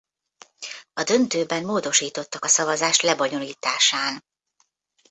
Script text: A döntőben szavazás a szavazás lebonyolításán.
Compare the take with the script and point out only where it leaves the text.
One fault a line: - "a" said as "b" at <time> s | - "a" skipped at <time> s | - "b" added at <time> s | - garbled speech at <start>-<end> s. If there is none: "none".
- "szavazás" said as "módosítottak" at 1.6 s